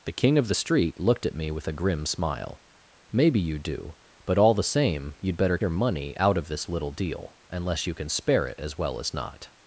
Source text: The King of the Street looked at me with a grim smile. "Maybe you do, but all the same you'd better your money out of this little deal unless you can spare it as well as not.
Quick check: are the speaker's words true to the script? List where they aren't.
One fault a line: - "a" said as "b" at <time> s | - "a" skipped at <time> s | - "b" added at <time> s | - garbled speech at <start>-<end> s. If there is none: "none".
none